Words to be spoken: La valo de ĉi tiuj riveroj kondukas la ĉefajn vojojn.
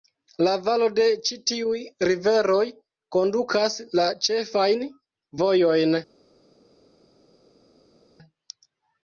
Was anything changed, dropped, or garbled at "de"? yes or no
no